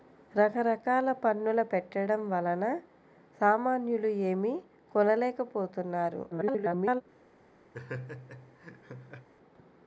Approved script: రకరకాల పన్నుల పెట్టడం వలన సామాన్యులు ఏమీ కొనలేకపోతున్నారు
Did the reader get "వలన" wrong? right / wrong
right